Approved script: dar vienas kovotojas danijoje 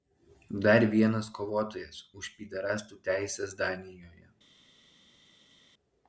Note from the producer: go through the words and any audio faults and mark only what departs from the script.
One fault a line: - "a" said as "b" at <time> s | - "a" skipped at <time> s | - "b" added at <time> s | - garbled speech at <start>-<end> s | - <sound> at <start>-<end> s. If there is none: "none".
- "už pyderastų teises" added at 2.2 s